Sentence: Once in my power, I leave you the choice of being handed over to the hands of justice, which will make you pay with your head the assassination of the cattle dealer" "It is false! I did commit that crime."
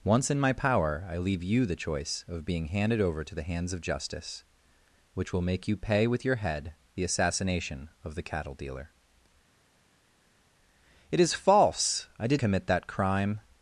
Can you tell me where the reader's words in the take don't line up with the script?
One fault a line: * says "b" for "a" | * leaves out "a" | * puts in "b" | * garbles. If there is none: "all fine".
all fine